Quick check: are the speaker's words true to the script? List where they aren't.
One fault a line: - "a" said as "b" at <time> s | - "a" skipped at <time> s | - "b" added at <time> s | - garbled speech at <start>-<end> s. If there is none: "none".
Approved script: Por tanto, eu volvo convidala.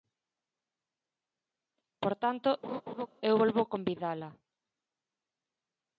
none